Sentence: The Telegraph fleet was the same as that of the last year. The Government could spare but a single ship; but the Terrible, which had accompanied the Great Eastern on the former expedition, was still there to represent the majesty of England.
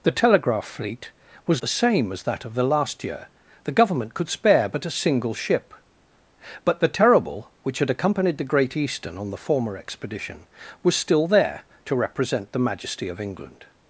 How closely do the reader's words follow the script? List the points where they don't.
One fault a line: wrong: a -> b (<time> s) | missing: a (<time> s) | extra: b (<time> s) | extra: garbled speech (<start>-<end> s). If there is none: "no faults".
no faults